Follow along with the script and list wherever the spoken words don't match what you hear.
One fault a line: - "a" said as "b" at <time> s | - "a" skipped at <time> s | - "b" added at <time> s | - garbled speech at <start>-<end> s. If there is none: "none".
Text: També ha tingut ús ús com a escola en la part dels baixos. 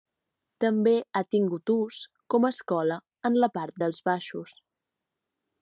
- "ús" skipped at 2.0 s